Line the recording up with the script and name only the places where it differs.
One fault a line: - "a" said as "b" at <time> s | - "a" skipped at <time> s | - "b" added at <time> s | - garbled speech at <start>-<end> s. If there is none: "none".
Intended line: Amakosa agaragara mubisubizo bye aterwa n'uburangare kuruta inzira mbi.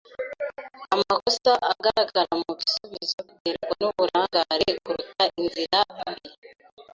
- "bye" skipped at 3.2 s